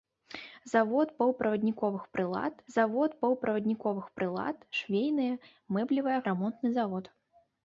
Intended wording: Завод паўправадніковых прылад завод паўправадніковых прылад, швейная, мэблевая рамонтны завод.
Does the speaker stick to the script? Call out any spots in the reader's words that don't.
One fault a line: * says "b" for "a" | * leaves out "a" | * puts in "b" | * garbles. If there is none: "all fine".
all fine